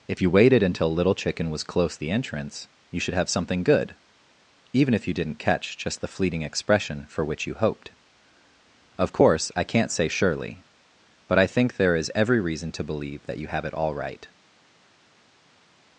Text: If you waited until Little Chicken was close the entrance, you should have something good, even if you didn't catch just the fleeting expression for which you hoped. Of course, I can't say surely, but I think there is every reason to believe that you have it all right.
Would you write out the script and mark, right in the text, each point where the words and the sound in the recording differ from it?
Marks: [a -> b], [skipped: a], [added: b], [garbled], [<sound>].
If you waited until Little Chicken was close the entrance, you should have something good, even if you didn't catch just the fleeting expression for which you hoped. Of course, I can't say surely, but I think there is every reason to believe that you have it all right.